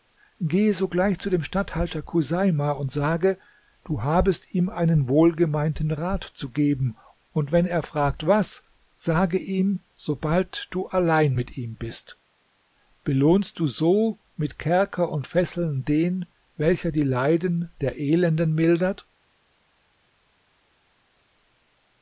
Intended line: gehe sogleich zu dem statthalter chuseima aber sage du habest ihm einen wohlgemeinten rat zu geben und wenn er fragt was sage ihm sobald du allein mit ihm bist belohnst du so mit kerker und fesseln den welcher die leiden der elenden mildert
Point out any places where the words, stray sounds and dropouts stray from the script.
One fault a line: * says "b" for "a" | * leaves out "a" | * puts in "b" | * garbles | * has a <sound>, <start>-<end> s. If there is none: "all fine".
* says "und" for "aber"